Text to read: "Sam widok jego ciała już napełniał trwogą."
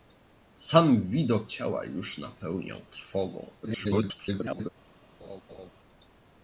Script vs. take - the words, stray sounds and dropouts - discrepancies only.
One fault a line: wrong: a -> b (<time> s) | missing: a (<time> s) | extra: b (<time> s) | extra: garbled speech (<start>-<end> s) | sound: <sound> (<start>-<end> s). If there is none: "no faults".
missing: jego (1.5 s)
extra: garbled speech (3.6-4.7 s)
sound: laugh (5.2-5.7 s)